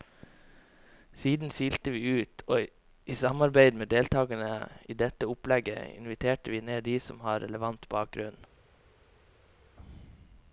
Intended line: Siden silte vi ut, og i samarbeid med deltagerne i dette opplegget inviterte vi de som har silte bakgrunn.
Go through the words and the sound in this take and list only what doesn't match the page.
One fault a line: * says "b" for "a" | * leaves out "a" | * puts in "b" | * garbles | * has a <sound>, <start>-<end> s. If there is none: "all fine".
* puts in "ned"
* says "relevant" for "silte"